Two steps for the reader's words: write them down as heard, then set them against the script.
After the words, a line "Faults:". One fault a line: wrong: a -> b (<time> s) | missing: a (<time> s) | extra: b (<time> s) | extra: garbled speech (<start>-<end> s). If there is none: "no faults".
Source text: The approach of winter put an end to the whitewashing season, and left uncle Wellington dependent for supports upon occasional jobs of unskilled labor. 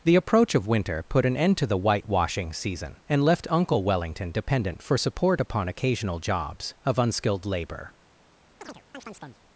The approach of winter put an end to the whitewashing season, and left uncle Wellington dependent for support upon occasional jobs of unskilled labor.
Faults:
wrong: supports -> support (5.0 s)